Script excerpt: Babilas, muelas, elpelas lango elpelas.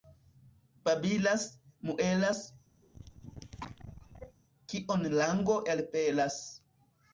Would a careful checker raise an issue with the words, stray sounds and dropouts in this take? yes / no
yes